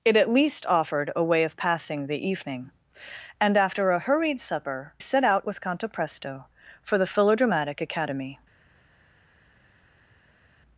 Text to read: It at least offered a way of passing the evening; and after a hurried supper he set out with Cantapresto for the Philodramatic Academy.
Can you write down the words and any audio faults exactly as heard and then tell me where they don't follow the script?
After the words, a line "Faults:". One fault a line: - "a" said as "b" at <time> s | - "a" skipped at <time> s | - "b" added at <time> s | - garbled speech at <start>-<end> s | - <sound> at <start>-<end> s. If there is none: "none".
It at least offered a way of passing the evening; and after a hurried supper set out with Cantapresto for the Philodramatic Academy.
Faults:
- "he" skipped at 4.9 s